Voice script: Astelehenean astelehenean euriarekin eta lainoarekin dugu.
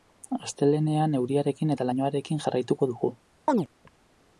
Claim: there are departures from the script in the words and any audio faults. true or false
true